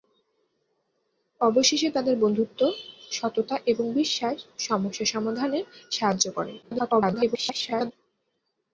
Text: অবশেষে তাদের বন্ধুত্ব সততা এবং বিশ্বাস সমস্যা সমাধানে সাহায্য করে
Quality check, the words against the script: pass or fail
fail